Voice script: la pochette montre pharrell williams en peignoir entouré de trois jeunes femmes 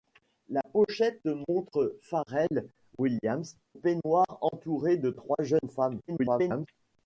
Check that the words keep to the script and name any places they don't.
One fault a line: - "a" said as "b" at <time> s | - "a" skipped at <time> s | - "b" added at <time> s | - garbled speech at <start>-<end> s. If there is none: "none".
- "en" skipped at 3.5 s
- garbled speech at 6.1-6.7 s